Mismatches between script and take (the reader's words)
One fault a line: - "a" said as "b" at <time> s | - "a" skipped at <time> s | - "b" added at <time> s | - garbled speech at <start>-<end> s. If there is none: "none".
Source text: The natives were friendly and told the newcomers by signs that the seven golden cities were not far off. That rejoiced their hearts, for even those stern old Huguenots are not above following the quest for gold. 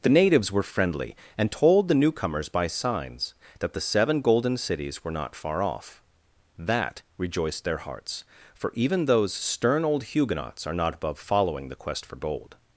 none